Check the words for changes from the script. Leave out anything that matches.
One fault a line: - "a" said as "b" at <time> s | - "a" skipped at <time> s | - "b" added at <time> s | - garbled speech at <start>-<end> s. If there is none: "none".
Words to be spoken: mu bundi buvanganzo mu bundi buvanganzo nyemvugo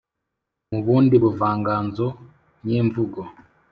- "mu bundi buvanganzo" skipped at 2.1 s